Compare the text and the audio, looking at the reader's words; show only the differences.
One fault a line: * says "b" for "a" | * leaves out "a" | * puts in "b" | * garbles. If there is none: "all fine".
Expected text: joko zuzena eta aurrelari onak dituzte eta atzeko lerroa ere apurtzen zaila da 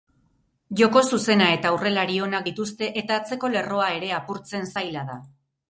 all fine